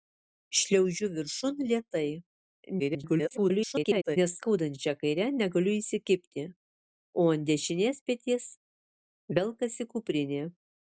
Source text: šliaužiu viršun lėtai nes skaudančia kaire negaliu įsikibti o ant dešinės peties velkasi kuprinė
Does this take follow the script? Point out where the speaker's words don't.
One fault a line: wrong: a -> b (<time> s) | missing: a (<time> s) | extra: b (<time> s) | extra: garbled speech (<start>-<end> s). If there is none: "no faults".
extra: garbled speech (2.8-4.2 s)